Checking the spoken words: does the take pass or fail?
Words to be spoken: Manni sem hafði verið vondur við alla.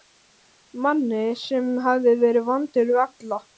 pass